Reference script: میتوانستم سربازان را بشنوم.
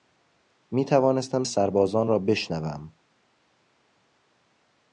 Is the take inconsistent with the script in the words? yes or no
no